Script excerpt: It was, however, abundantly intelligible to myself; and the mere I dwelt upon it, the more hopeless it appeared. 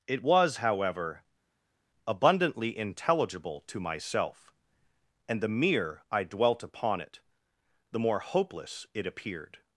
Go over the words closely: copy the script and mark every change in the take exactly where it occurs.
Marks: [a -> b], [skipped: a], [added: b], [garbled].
It was, however, abundantly intelligible to myself; and the mere I dwelt upon it, the more hopeless it appeared.